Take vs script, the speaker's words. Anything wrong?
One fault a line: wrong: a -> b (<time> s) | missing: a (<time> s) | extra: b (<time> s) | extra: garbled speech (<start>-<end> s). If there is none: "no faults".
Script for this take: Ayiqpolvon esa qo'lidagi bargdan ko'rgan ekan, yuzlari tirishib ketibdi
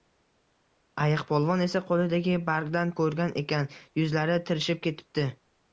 no faults